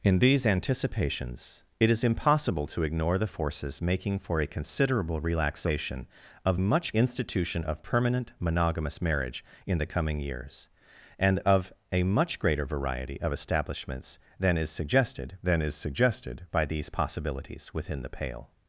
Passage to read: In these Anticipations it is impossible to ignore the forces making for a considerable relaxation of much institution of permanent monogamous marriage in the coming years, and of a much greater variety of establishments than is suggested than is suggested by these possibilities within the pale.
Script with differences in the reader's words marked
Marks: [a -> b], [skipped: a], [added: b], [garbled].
In these Anticipations it is impossible to ignore the forces making for a considerable relaxation of much institution of permanent monogamous marriage in the coming years, and of a much greater variety of establishments than is suggested than is suggested by these possibilities within the pale.